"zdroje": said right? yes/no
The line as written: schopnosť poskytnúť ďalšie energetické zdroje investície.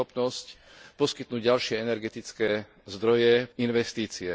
yes